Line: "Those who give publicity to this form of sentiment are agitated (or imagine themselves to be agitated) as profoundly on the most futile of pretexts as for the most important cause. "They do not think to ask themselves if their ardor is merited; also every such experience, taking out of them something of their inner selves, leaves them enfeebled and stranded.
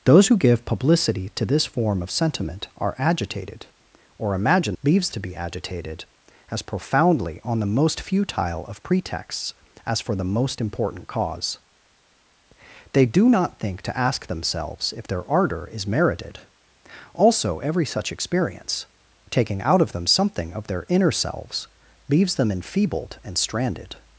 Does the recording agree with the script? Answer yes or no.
no